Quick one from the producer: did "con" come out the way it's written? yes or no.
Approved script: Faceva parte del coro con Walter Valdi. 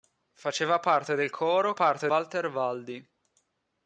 no